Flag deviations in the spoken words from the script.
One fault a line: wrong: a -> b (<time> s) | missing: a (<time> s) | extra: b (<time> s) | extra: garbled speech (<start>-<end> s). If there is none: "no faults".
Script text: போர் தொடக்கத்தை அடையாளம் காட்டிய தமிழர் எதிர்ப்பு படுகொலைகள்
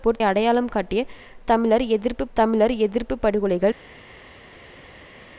missing: தொடக்கத்தை (0.2 s)
extra: தமிழர் எதிர்ப்பு (2.3 s)